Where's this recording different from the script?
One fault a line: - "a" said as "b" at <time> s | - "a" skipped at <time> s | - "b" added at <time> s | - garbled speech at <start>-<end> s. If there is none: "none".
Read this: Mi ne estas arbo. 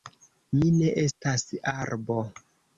none